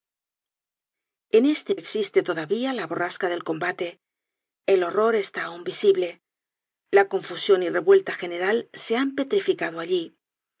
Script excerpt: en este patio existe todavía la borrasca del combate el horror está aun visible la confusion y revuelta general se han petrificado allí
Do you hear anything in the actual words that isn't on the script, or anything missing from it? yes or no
yes